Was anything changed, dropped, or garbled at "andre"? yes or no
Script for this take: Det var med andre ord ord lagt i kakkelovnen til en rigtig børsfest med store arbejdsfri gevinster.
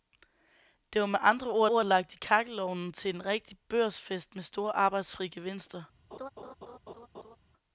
no